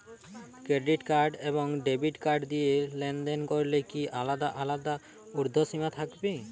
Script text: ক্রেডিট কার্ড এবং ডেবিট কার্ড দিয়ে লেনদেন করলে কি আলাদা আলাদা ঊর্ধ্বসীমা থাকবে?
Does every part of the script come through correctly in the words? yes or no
yes